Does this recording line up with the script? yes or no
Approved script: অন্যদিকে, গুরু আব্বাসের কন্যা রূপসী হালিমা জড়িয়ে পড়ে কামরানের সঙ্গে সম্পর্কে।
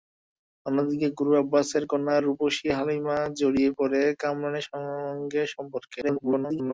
no